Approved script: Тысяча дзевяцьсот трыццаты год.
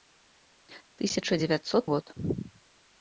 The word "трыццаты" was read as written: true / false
false